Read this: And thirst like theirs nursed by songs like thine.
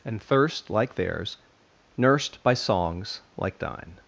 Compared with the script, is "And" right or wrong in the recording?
right